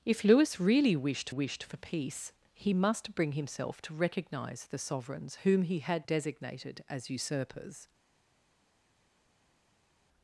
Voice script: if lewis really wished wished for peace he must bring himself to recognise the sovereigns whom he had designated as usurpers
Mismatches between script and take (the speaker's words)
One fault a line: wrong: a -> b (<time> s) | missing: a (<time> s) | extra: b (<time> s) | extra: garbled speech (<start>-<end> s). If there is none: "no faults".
no faults